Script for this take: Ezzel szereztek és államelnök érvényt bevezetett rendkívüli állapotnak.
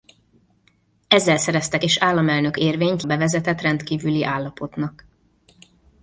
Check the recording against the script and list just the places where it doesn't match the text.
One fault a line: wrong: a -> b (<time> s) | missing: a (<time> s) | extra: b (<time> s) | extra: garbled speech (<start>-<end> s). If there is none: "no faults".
no faults